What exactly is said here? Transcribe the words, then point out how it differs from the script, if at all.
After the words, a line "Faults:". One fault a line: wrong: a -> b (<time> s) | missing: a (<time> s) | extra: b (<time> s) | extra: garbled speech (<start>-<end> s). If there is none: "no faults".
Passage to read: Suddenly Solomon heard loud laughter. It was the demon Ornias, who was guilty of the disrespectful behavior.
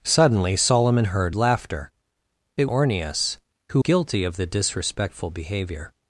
Suddenly Solomon heard laughter. It Ornias, who guilty of the disrespectful behavior.
Faults:
missing: loud (1.4 s)
missing: was the demon (2.7 s)
missing: was (3.8 s)